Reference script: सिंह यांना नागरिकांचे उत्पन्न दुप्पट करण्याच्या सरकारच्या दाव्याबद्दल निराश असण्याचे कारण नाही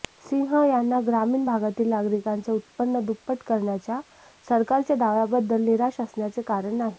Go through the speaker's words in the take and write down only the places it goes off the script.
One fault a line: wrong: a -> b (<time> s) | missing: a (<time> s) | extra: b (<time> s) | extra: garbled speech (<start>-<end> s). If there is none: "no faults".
extra: ग्रामीण भागातील (1.1 s)